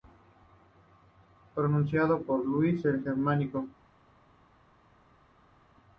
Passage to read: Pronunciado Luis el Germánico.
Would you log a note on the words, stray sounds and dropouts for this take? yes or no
yes